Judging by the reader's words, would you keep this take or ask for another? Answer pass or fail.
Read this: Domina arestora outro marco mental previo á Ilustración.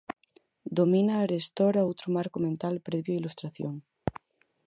pass